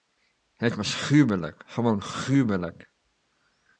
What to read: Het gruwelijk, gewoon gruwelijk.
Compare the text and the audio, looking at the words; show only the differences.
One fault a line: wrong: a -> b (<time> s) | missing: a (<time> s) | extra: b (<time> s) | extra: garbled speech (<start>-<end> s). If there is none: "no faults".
extra: was (0.8 s)